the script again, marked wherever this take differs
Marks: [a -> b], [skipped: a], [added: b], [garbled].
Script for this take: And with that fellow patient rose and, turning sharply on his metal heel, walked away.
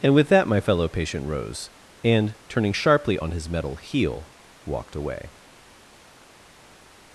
And with that [added: my] fellow patient rose and, turning sharply on his metal heel, walked away.